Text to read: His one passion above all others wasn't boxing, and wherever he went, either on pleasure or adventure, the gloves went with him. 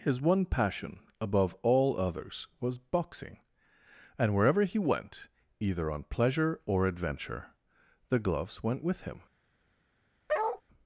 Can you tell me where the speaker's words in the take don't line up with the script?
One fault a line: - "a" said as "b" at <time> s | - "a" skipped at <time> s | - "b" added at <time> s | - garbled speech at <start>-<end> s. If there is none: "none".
- "wasn't" said as "was" at 2.6 s